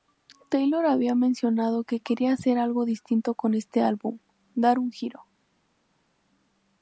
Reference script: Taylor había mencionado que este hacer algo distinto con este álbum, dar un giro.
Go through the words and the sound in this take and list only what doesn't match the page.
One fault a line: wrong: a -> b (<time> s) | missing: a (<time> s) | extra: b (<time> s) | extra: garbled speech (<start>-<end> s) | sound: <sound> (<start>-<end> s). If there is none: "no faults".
wrong: este -> quería (2.0 s)